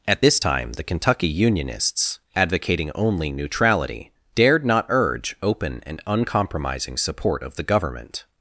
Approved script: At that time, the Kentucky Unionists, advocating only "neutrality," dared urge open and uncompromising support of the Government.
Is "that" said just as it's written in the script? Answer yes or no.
no